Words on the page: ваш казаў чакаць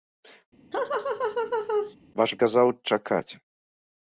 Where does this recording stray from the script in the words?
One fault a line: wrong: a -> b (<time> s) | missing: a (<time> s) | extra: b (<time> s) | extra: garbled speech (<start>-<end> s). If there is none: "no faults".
no faults